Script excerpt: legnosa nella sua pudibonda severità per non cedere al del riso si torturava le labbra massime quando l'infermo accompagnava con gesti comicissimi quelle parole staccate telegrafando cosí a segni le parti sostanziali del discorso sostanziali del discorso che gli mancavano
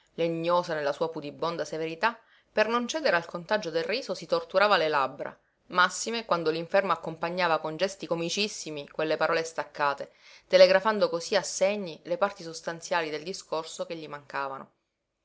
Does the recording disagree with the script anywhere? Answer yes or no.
yes